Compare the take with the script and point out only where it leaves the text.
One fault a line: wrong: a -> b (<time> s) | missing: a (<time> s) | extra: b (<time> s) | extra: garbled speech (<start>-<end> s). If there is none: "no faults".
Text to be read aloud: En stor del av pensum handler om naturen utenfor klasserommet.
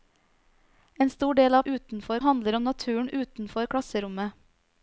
wrong: pensum -> utenfor (1.6 s)